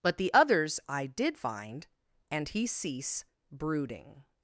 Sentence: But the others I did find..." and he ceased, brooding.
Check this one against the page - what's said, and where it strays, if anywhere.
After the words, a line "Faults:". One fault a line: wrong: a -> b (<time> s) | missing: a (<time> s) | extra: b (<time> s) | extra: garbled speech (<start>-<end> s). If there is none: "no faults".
But the others I did find..." and he cease, brooding.
Faults:
wrong: ceased -> cease (2.7 s)